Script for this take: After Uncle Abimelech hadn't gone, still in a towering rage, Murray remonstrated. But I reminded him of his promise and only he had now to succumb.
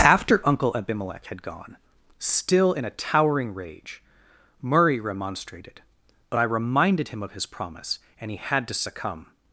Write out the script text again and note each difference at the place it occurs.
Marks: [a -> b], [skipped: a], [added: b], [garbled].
After Uncle Abimelech [hadn't -> had] gone, still in a towering rage, Murray remonstrated. But I reminded him of his promise and [skipped: only] he had [skipped: now] to succumb.